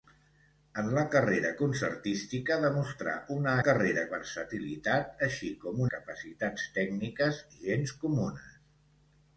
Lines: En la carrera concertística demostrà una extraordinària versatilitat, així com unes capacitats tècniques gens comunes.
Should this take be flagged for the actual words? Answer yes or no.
yes